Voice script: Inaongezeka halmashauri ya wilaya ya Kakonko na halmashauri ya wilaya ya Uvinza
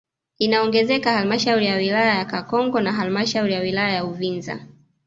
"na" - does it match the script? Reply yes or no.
yes